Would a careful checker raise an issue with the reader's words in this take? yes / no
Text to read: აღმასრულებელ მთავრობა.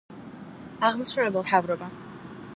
no